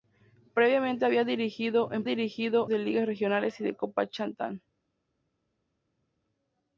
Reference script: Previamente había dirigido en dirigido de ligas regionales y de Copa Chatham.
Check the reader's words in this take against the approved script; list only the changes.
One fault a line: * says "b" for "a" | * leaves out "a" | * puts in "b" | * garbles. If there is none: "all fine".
all fine